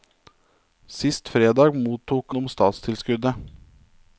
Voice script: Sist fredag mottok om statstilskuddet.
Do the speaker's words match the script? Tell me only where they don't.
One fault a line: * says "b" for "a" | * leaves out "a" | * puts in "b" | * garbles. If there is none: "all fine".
all fine